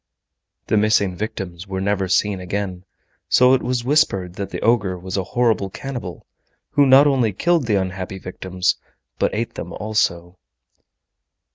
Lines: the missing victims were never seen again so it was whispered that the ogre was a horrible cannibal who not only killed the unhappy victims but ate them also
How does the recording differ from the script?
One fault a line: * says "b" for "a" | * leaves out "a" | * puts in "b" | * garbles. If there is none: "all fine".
all fine